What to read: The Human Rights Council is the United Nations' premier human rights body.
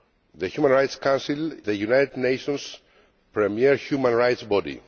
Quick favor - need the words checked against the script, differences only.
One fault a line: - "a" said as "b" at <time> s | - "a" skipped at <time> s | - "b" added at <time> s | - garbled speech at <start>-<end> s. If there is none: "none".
- "is" skipped at 1.5 s